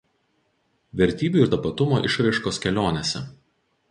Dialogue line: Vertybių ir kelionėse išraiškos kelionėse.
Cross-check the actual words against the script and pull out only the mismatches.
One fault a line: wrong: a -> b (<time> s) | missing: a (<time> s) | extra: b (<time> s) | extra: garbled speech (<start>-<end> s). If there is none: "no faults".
wrong: kelionėse -> tapatumo (1.5 s)